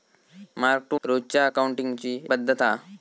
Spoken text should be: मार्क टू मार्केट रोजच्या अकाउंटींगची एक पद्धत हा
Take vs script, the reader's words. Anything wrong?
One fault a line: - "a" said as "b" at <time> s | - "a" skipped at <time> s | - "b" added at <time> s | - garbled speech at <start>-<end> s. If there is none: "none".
- "मार्केट" skipped at 1.0 s
- "एक" skipped at 2.2 s